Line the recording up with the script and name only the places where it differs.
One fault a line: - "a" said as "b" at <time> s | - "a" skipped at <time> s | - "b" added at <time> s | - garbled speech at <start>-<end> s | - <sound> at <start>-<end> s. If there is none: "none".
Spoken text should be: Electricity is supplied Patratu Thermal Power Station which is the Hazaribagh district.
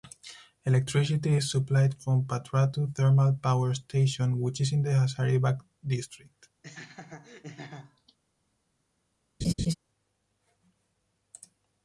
- "from" added at 2.0 s
- "in" added at 4.7 s
- laugh at 6.6-8.2 s
- laugh at 9.4-9.8 s